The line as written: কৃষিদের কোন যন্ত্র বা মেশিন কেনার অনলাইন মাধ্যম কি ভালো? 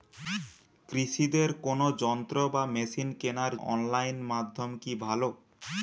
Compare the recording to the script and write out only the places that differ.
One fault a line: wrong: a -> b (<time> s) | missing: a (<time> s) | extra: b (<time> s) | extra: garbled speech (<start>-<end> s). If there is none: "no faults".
no faults